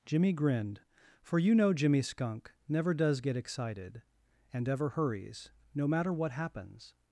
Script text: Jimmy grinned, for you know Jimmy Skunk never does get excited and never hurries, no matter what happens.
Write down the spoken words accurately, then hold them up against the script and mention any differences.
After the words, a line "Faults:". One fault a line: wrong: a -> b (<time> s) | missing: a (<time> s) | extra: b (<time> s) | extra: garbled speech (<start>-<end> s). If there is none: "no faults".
Jimmy grinned, for you know Jimmy Skunk never does get excited and ever hurries, no matter what happens.
Faults:
wrong: never -> ever (4.7 s)